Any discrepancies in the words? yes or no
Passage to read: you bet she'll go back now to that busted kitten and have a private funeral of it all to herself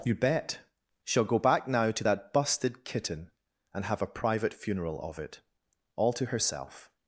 no